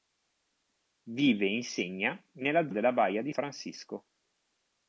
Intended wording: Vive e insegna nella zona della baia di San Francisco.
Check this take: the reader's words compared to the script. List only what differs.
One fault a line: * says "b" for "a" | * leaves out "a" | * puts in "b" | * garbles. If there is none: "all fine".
* leaves out "zona"
* leaves out "San"